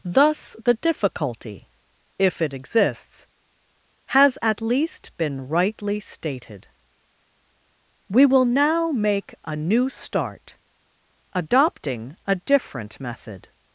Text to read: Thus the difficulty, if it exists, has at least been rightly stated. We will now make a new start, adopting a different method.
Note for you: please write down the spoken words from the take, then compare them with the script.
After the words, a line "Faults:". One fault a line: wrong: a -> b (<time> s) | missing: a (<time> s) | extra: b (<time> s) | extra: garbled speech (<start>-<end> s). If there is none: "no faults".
Thus the difficulty, if it exists, has at least been rightly stated. We will now make a new start, adopting a different method.
Faults:
no faults